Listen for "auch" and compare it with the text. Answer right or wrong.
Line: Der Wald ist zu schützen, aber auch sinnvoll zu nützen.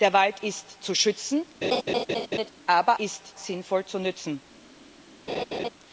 wrong